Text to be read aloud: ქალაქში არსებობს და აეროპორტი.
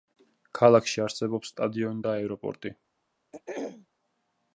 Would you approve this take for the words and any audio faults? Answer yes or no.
no